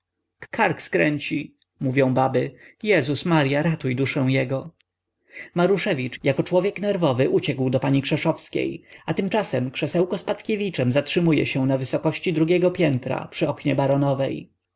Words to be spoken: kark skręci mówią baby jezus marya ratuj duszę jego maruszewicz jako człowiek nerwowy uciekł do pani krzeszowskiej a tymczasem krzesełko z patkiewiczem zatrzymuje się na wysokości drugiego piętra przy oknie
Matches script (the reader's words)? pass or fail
pass